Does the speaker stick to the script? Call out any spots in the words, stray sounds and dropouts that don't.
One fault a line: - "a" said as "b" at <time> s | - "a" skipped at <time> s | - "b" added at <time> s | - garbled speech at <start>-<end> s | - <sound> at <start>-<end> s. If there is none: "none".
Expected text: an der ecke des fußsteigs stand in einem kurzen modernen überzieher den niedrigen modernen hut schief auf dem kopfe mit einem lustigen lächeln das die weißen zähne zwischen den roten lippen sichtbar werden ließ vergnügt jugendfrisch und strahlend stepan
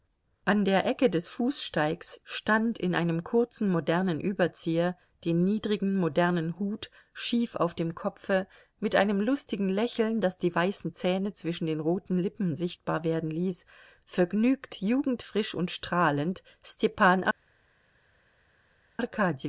none